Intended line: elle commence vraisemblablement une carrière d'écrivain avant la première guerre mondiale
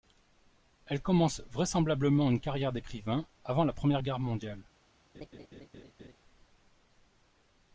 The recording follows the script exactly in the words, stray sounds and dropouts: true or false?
false